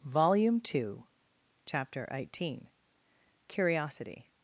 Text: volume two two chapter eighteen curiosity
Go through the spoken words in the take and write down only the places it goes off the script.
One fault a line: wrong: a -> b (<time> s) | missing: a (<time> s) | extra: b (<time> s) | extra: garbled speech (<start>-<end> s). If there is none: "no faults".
missing: two (1.1 s)